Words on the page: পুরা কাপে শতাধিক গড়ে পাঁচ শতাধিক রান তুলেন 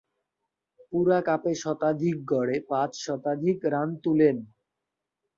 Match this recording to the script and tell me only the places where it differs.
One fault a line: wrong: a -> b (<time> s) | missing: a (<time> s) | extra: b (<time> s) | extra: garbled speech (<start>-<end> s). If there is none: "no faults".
no faults